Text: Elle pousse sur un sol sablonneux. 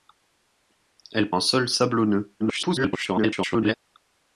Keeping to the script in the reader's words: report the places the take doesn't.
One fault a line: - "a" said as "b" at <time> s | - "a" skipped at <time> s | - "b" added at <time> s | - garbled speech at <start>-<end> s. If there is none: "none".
- "pousse sur" skipped at 1.3 s
- garbled speech at 2.4-3.8 s